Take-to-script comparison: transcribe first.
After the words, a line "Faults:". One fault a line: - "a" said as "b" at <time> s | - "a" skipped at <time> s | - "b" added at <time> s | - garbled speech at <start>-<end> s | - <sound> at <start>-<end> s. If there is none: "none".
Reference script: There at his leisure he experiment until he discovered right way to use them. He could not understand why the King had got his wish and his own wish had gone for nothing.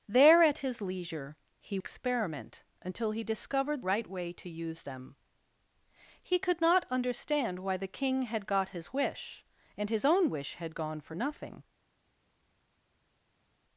There at his leisure he experiment until he discovered right way to use them. He could not understand why the King had got his wish and his own wish had gone for nothing.
Faults:
none